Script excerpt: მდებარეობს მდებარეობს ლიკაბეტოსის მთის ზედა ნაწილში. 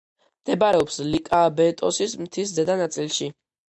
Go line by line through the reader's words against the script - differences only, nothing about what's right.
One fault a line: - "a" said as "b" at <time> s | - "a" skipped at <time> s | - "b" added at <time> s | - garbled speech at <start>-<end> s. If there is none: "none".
- "მდებარეობს" skipped at 0.9 s